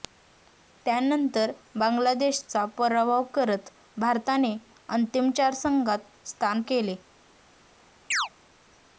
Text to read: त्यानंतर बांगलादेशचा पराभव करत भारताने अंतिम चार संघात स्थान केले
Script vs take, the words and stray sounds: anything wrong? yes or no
yes